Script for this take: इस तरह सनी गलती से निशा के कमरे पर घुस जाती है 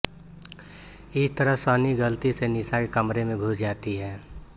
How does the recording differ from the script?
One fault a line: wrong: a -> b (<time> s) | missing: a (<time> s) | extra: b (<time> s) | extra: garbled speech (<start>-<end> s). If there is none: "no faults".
wrong: पर -> में (3.2 s)